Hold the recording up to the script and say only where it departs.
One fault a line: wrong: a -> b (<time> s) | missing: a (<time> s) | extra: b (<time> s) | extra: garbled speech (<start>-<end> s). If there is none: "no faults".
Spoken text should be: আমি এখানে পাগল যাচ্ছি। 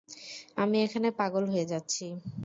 extra: হয়ে (1.5 s)